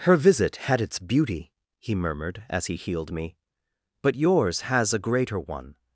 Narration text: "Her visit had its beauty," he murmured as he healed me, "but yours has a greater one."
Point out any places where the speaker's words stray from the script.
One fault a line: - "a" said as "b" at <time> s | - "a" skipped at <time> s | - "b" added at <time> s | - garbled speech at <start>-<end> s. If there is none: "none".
none